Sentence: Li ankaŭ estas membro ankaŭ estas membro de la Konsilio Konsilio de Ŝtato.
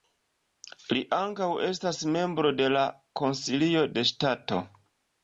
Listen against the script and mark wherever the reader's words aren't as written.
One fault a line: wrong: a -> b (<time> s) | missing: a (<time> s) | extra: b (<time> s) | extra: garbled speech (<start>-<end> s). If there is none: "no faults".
missing: ankaŭ estas membro (2.5 s)
missing: Konsilio (3.8 s)